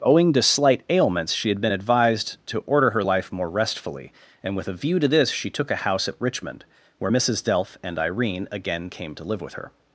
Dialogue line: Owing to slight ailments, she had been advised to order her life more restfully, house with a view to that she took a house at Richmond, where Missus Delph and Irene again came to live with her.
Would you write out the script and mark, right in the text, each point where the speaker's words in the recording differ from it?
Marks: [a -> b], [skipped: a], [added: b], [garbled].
Owing to slight ailments, she had been advised to order her life more restfully, [house -> and] with a view to [that -> this] she took a house at Richmond, where Missus Delph and Irene again came to live with her.